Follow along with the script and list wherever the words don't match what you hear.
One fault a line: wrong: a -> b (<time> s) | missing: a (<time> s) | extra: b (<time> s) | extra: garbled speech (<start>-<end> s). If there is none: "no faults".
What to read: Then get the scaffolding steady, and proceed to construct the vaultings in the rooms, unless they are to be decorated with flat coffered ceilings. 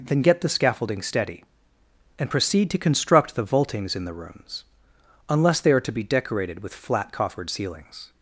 no faults